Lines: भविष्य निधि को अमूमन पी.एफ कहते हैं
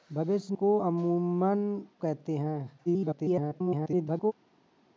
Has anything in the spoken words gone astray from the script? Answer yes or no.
yes